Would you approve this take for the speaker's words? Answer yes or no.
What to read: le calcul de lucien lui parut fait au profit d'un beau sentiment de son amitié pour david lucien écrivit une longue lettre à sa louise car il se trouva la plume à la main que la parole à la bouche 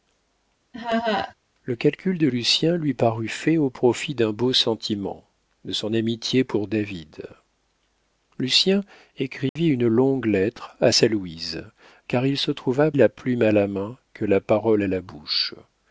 yes